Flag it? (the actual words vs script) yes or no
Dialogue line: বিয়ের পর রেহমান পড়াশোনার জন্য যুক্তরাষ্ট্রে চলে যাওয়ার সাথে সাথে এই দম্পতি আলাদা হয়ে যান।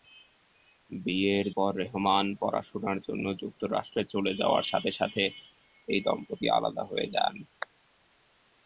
no